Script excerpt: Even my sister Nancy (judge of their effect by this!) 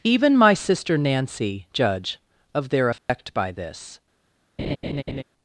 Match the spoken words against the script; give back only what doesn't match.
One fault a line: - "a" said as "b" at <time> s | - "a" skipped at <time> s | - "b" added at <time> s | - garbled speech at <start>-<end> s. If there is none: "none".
none